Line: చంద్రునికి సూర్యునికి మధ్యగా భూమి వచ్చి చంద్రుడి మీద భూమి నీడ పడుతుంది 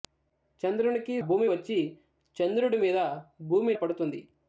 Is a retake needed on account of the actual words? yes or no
yes